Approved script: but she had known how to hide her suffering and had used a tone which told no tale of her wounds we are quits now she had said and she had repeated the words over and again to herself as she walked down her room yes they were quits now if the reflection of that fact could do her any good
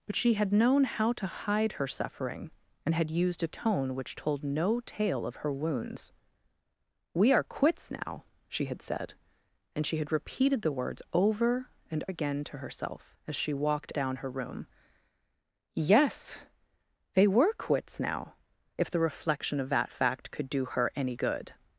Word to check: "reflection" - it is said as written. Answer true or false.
true